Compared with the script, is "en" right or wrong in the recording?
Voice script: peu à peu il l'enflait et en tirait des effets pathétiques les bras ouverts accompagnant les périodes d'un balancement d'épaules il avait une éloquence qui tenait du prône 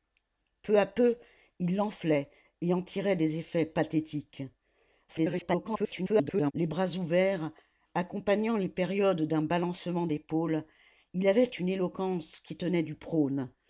right